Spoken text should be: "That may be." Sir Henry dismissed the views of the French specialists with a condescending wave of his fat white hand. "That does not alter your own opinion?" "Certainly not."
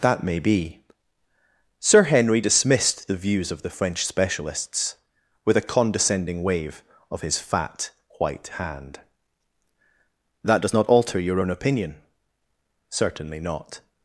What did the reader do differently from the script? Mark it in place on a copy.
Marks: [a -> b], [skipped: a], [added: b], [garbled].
"That may be." Sir Henry dismissed the views of the French specialists with a condescending wave of his fat white hand. "That does not alter your own opinion?" "Certainly not."